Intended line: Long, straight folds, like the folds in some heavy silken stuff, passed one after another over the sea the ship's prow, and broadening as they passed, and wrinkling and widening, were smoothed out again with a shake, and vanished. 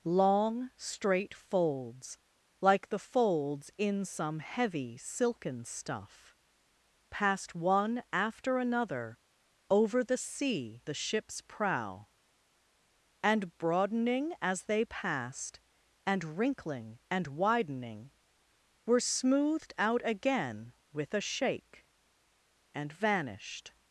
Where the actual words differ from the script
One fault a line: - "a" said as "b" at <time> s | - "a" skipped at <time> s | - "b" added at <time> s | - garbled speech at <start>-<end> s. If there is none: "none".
none